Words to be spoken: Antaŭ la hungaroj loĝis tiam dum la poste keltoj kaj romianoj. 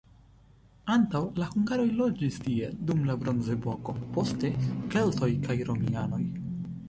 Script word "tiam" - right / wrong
wrong